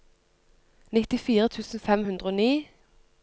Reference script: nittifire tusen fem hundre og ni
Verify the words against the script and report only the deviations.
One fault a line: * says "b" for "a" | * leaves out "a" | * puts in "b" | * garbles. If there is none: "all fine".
all fine